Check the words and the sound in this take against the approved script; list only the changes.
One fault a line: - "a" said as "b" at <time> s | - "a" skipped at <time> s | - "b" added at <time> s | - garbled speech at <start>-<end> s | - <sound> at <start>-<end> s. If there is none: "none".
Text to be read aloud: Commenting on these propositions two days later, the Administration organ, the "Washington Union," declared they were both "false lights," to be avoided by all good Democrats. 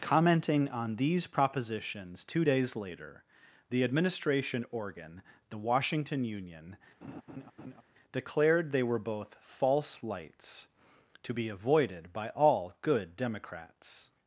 - laugh at 7.0-7.8 s